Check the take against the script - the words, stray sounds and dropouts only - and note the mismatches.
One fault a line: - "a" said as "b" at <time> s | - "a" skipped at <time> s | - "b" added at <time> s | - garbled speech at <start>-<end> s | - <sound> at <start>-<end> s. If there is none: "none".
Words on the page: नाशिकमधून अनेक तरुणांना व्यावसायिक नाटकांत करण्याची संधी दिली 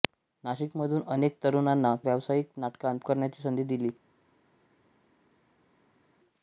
none